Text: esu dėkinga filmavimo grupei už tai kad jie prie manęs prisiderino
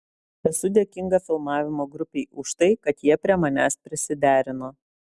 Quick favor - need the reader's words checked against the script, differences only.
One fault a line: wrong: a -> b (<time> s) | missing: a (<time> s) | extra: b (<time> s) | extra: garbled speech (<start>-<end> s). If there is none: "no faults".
no faults